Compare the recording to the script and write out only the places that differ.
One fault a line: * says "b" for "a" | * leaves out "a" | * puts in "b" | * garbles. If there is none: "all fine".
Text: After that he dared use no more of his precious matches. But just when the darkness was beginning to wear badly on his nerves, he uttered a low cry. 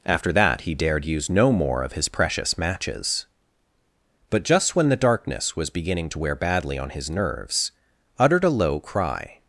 * leaves out "he"